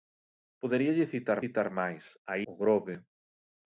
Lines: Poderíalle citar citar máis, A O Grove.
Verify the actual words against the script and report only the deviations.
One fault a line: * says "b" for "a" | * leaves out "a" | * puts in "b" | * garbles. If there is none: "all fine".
all fine